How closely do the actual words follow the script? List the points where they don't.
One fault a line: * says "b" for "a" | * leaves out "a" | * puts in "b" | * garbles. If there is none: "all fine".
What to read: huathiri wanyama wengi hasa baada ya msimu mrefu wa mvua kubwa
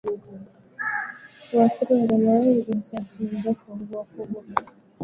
* leaves out "baada"